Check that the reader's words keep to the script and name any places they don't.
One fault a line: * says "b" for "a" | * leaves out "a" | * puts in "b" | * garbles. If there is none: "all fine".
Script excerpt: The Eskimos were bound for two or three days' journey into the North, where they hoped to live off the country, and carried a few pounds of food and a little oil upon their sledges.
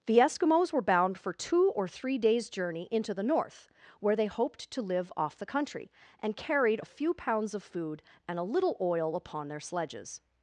all fine